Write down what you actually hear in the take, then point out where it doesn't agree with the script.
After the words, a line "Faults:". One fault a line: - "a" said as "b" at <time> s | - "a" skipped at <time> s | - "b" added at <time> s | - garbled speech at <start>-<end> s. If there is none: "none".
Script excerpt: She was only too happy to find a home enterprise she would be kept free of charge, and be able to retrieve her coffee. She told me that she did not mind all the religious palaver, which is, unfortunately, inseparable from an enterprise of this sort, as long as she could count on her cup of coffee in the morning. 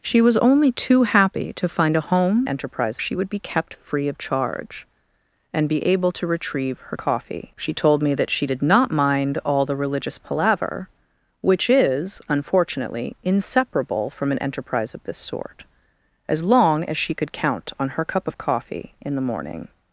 She was only too happy to find a home enterprise she would be kept free of charge, and be able to retrieve her coffee. She told me that she did not mind all the religious palaver, which is, unfortunately, inseparable from an enterprise of this sort, as long as she could count on her cup of coffee in the morning.
Faults:
none